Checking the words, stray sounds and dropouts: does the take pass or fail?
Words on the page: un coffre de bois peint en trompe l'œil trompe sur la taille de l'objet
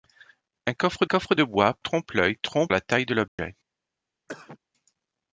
fail